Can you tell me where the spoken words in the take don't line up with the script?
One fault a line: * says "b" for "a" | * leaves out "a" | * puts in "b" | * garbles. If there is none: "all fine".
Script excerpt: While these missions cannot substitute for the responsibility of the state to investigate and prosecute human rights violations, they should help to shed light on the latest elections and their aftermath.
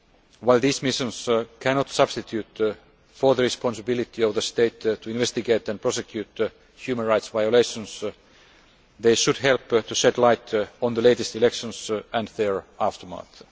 all fine